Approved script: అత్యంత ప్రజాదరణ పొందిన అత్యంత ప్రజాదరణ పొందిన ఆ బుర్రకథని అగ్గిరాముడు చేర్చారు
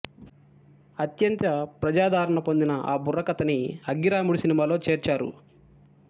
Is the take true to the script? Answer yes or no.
no